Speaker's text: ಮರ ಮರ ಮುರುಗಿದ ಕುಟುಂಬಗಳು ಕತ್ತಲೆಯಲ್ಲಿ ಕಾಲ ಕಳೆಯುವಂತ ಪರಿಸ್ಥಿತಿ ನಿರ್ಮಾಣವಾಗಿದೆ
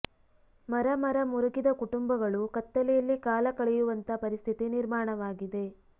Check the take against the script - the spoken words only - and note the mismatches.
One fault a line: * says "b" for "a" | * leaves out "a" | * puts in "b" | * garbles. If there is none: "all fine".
all fine